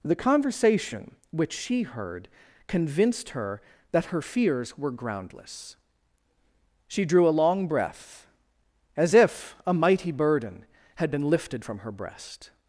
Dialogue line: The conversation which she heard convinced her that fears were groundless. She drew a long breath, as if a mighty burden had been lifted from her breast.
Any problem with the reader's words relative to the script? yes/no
yes